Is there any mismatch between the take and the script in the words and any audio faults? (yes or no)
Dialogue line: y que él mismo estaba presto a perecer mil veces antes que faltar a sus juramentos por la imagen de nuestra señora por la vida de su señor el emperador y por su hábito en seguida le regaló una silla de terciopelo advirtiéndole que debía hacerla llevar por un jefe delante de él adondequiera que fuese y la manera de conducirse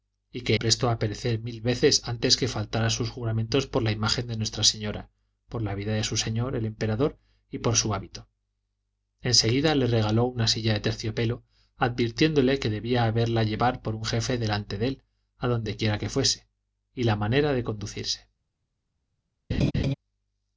yes